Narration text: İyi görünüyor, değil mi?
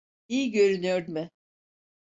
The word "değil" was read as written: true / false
false